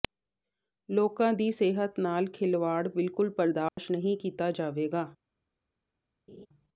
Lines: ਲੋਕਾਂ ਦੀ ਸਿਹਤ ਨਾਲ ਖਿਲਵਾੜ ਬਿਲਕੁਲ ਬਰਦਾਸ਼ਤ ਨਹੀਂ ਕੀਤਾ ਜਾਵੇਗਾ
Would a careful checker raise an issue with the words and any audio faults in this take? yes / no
yes